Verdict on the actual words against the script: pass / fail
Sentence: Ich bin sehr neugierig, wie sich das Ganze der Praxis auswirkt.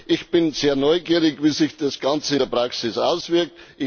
pass